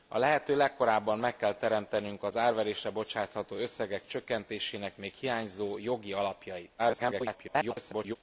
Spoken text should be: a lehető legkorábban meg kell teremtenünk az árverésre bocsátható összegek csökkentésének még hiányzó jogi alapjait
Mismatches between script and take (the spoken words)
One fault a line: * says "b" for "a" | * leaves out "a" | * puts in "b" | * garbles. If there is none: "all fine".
* garbles